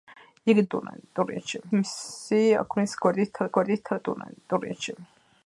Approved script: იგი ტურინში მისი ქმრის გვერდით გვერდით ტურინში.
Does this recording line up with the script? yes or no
yes